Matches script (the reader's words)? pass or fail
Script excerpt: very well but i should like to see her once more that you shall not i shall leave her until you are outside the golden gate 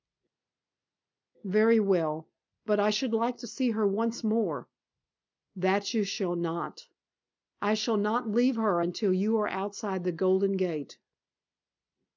fail